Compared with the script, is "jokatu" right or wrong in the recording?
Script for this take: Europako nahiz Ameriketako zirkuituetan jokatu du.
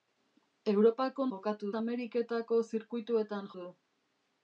wrong